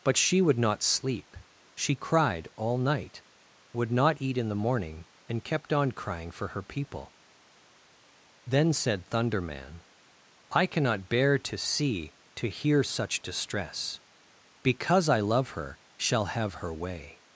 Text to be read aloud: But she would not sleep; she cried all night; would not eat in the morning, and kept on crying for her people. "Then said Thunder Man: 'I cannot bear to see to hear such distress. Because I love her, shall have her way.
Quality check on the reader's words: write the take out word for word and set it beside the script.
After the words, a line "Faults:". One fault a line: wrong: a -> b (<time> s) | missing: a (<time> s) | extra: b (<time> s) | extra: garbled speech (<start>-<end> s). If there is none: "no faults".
But she would not sleep; she cried all night; would not eat in the morning, and kept on crying for her people. "Then said Thunder Man: 'I cannot bear to see to hear such distress. Because I love her, shall have her way.
Faults:
no faults